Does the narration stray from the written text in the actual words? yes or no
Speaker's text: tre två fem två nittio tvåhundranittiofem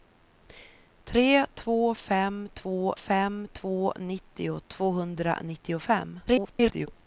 yes